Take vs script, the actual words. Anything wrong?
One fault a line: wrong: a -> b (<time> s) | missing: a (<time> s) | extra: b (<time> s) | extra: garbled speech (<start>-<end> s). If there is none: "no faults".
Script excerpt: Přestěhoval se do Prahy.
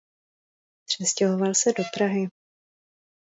no faults